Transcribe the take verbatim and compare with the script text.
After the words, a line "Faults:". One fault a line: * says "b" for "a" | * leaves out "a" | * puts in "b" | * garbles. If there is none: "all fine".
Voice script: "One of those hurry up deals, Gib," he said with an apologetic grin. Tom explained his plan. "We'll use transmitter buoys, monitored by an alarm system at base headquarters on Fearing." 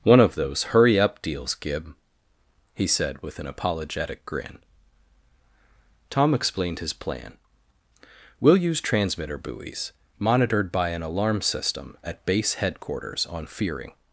"One of those hurry up deals, Gib," he said with an apologetic grin. Tom explained his plan. "We'll use transmitter buoys, monitored by an alarm system at base headquarters on Fearing."
Faults:
all fine